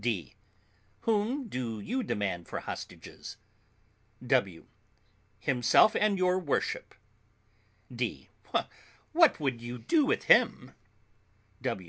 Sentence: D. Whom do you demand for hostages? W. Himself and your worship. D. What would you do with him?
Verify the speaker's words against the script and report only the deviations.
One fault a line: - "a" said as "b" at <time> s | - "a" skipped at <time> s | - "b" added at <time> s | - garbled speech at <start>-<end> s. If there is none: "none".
none